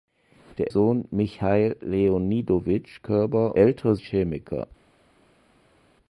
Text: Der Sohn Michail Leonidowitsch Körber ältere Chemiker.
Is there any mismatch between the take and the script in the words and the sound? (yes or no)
no